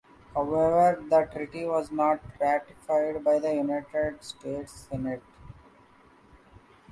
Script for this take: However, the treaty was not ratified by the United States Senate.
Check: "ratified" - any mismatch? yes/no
no